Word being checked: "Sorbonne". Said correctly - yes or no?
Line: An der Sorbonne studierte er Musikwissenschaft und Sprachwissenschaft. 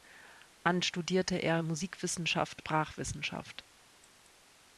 no